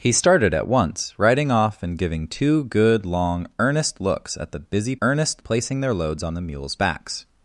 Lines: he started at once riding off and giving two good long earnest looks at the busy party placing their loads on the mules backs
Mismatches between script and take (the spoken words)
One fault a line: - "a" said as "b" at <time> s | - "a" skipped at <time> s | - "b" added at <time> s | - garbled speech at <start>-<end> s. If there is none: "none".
- "party" said as "earnest" at 5.0 s